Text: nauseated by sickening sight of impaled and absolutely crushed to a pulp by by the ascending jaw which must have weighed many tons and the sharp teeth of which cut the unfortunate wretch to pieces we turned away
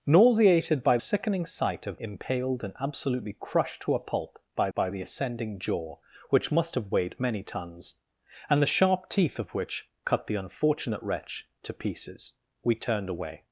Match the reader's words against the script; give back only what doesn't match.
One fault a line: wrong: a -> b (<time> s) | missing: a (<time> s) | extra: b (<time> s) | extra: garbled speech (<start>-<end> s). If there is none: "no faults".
no faults